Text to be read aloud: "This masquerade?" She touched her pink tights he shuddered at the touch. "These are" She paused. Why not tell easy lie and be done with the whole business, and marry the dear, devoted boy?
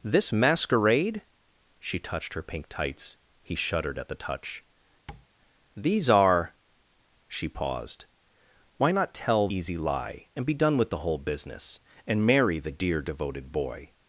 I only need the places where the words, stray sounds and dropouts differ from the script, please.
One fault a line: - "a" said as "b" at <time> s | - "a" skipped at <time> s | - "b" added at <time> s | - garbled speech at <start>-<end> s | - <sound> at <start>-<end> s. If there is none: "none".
- tap at 5.1-5.3 s